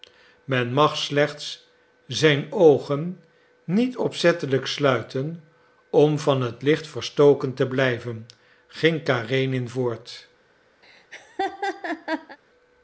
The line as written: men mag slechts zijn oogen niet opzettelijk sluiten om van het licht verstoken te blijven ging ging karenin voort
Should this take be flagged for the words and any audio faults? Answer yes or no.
yes